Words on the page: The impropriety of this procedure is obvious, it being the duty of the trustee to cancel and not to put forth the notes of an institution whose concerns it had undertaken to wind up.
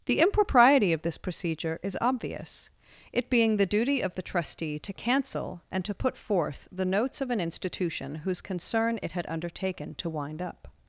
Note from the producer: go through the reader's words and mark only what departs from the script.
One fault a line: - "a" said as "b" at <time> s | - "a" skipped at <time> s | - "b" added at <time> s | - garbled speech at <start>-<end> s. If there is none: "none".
- "not" skipped at 5.8 s
- "concerns" said as "concern" at 8.4 s